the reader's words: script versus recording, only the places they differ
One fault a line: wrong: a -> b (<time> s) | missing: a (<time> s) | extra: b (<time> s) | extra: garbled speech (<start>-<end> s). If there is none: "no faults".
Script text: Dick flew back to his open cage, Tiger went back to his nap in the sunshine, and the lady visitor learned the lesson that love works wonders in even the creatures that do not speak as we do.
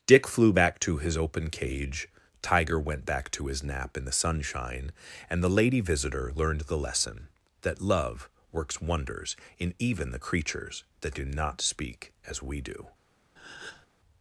no faults